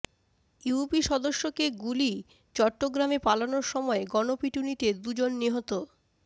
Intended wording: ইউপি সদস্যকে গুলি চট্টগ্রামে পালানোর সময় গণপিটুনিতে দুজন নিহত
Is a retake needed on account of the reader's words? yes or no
no